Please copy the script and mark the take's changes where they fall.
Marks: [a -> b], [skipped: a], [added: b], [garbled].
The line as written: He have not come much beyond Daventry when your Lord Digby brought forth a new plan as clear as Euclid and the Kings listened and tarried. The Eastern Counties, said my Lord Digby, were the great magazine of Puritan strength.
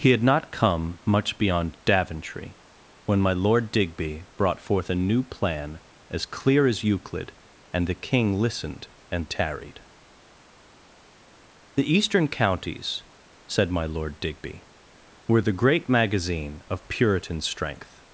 He [have -> had] not come much beyond Daventry when [your -> my] Lord Digby brought forth a new plan as clear as Euclid and the [Kings -> King] listened and tarried. The Eastern Counties, said my Lord Digby, were the great magazine of Puritan strength.